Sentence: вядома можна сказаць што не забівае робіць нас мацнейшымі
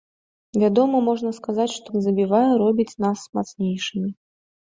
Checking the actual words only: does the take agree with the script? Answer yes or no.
yes